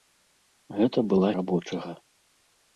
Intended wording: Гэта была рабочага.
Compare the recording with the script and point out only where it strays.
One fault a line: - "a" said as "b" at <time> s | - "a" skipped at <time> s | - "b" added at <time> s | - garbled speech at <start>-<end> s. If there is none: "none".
none